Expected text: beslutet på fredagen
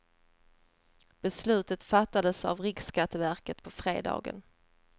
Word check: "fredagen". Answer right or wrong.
right